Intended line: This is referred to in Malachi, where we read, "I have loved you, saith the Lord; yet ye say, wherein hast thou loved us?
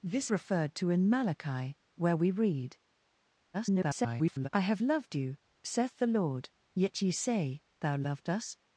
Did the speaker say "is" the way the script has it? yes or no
no